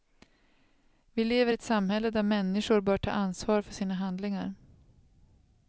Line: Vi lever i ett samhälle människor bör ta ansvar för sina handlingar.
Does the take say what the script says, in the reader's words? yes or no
no